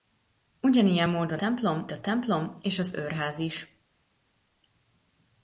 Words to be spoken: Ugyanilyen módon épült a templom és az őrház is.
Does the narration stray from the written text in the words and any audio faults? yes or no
yes